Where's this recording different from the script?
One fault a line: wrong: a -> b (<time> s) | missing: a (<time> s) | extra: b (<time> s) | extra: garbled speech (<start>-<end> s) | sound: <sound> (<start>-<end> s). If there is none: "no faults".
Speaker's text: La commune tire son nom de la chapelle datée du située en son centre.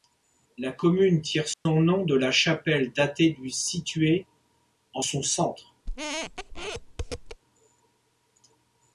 sound: dropout (1.5-1.7 s)
sound: squeak (5.9-7.4 s)